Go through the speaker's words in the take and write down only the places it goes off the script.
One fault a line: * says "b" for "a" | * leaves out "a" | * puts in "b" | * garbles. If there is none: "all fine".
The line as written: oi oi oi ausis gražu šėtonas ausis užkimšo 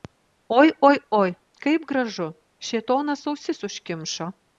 * says "kaip" for "ausis"